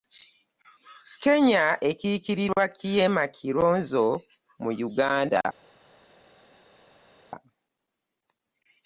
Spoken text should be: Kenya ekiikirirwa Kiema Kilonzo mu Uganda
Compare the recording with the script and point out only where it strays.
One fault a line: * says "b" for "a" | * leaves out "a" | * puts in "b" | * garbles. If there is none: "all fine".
all fine